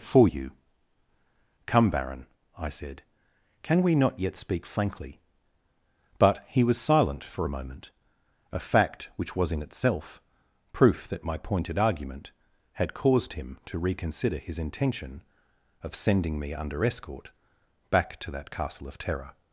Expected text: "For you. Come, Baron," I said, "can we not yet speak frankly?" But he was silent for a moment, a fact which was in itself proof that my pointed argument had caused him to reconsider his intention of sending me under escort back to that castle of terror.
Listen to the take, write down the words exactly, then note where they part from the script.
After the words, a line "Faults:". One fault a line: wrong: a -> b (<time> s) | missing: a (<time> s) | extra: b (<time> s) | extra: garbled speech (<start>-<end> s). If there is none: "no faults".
"For you. Come, Baron," I said, "can we not yet speak frankly?" But he was silent for a moment, a fact which was in itself proof that my pointed argument had caused him to reconsider his intention of sending me under escort back to that castle of terror.
Faults:
no faults